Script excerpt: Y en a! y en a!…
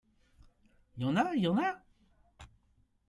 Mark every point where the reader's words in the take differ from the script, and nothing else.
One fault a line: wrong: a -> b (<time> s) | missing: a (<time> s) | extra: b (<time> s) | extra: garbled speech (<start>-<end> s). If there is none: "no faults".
no faults